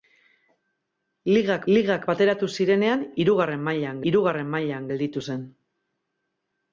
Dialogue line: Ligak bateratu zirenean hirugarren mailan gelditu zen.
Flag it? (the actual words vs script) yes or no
yes